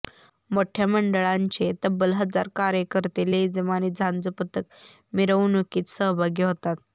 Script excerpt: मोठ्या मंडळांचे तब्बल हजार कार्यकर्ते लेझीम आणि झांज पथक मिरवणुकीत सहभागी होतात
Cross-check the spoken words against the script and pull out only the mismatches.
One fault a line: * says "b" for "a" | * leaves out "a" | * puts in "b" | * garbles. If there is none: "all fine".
all fine